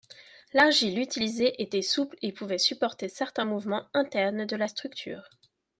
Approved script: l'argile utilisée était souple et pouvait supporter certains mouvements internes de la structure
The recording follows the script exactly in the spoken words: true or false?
true